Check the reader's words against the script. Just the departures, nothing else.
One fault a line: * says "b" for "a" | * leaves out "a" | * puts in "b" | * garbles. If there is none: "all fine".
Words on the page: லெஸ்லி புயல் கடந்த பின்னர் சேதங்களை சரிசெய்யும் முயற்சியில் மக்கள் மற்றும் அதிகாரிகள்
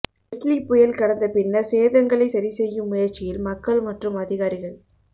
all fine